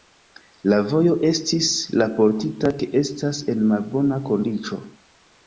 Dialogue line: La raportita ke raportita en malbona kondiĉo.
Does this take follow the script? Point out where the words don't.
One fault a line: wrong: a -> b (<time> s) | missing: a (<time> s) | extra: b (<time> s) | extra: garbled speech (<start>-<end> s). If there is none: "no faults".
extra: vojo estis (0.9 s)
wrong: raportita -> estas (3.0 s)